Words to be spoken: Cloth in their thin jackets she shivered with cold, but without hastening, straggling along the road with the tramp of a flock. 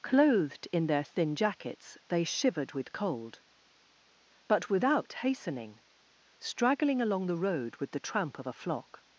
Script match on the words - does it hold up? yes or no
no